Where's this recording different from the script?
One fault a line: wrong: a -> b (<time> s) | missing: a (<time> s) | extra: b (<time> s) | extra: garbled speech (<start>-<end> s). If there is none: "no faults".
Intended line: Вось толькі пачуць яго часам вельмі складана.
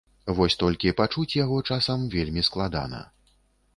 no faults